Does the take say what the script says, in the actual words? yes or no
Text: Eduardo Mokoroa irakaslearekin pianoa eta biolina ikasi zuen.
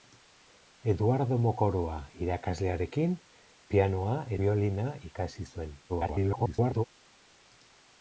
no